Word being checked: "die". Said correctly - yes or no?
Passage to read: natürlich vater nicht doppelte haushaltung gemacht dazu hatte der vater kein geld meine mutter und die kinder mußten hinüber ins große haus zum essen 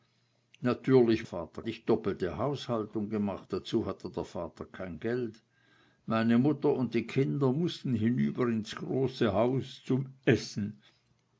yes